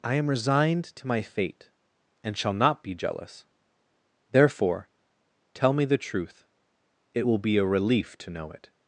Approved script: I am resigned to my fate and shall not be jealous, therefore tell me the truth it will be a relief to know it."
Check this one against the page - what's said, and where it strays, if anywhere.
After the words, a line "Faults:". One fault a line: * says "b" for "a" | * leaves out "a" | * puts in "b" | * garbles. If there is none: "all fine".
I am resigned to my fate and shall not be jealous, therefore tell me the truth it will be a relief to know it."
Faults:
all fine